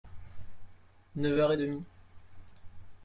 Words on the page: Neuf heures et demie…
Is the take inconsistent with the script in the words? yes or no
no